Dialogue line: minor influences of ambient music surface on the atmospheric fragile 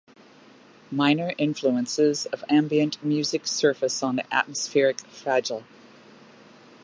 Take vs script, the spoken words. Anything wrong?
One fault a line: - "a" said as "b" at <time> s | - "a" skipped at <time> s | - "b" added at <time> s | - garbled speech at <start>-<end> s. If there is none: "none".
none